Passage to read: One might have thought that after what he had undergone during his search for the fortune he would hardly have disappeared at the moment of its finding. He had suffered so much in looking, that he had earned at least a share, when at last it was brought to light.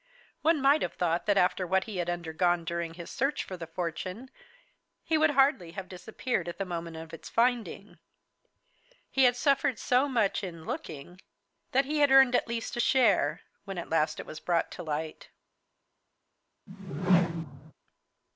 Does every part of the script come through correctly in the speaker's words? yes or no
yes